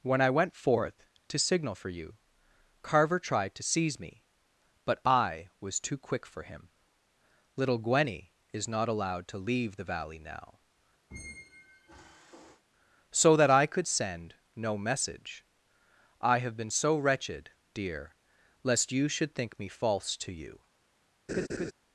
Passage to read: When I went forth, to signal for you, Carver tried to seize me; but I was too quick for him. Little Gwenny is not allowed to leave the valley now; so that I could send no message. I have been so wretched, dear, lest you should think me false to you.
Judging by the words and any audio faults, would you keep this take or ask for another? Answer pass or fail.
fail